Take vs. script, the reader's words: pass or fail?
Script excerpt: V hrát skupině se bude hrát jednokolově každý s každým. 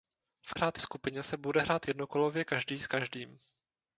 pass